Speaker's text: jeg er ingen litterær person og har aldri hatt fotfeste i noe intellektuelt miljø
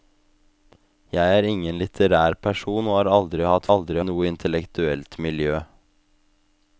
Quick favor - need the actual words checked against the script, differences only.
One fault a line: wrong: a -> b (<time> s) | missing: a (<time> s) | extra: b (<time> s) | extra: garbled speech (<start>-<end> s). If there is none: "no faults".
wrong: fotfeste -> aldri (3.7 s)